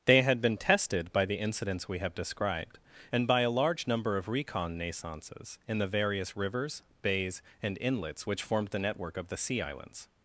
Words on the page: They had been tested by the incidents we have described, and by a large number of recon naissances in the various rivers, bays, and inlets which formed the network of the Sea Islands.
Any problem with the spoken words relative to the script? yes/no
no